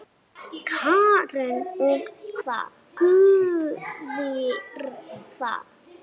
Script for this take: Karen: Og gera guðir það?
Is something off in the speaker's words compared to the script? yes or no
yes